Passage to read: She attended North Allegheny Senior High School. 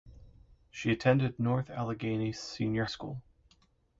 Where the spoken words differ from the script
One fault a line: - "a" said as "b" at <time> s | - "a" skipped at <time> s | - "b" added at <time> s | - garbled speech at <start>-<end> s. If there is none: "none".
- "High" skipped at 2.9 s